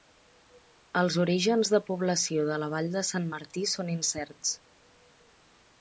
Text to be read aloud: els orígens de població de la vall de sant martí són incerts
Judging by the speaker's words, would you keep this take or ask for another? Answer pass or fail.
pass